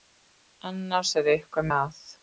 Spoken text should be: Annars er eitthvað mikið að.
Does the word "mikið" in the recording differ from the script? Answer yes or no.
yes